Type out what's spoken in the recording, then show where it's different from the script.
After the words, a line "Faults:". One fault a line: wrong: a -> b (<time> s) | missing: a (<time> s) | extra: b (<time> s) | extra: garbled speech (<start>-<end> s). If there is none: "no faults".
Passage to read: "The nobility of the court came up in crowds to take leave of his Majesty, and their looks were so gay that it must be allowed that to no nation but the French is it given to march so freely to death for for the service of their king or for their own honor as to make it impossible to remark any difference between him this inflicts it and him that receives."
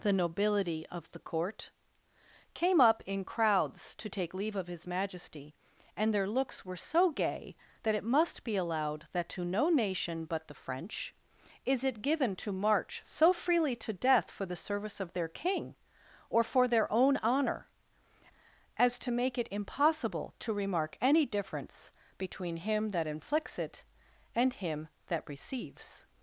"The nobility of the court came up in crowds to take leave of his Majesty, and their looks were so gay that it must be allowed that to no nation but the French is it given to march so freely to death for the service of their king or for their own honor as to make it impossible to remark any difference between him that inflicts it and him that receives."
Faults:
missing: for (14.4 s)
wrong: this -> that (22.9 s)